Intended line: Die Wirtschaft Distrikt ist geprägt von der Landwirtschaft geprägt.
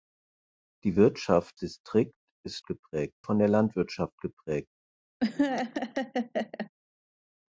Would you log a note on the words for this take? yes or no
no